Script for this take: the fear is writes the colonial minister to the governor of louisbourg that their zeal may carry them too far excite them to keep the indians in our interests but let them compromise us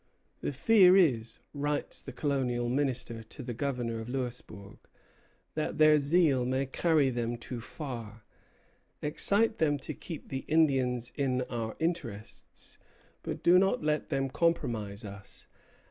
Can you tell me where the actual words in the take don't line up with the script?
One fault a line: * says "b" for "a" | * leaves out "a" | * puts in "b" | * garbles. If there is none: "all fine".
* puts in "do not"